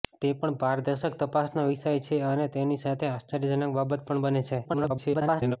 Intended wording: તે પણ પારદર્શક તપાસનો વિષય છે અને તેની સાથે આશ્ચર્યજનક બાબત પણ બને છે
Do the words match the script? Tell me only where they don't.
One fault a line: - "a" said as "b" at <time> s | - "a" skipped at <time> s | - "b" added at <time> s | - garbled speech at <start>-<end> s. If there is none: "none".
- garbled speech at 4.6-5.6 s